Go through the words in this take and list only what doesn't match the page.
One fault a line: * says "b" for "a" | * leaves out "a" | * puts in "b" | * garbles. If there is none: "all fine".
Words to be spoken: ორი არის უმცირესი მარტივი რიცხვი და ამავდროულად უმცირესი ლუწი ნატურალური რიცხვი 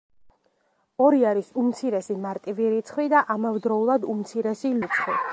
* leaves out "ლუწი ნატურალური"